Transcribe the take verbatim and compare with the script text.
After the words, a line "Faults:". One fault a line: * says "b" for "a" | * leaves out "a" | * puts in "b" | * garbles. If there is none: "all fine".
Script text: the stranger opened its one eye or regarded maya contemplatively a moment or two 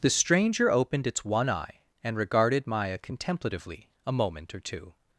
the stranger opened its one eye and regarded maya contemplatively a moment or two
Faults:
* says "and" for "or"